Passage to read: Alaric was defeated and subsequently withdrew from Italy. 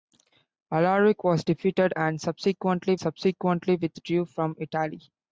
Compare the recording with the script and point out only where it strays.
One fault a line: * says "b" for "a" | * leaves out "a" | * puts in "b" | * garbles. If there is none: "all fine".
* puts in "subsequently"